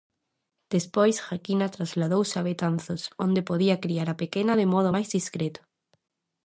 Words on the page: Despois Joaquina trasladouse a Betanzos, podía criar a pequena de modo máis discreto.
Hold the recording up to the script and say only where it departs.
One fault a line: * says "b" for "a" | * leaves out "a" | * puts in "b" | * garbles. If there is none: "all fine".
* puts in "onde"